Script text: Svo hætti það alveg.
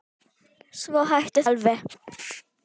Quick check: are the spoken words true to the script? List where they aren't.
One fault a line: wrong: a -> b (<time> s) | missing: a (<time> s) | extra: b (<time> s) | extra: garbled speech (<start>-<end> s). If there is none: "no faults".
missing: það (1.4 s)